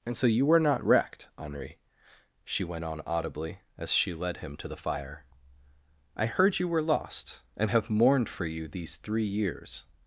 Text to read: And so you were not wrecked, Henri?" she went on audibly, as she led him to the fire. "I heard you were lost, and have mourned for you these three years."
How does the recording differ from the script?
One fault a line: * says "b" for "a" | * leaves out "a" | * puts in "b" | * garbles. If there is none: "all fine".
all fine